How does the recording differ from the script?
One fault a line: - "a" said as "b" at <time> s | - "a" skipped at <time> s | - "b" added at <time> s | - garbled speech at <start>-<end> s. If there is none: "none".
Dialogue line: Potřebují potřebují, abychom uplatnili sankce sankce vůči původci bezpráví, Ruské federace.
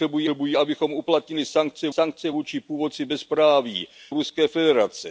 none